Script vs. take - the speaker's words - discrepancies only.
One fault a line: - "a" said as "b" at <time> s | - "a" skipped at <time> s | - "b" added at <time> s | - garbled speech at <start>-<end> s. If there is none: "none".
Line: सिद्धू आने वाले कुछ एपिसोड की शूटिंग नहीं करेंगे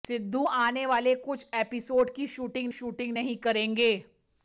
- "शूटिंग" added at 2.7 s